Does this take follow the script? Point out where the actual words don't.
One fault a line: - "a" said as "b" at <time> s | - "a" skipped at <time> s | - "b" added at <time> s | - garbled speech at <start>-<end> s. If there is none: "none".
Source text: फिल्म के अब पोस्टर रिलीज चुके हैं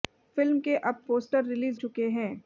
none